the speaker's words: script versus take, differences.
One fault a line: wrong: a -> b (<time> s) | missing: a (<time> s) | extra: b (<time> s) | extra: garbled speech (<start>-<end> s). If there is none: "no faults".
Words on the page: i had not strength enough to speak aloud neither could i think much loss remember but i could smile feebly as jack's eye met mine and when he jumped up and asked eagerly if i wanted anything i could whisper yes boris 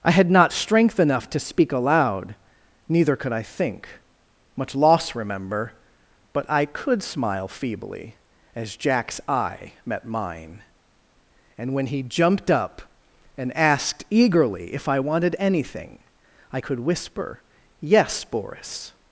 no faults